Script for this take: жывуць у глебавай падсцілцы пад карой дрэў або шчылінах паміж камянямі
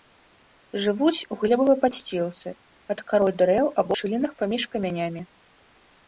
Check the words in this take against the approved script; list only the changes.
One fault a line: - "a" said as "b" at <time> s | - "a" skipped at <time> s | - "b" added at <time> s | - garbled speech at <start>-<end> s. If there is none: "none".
none